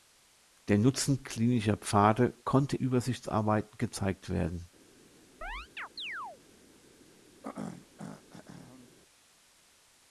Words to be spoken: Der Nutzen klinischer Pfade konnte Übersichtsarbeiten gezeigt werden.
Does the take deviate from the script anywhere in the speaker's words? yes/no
no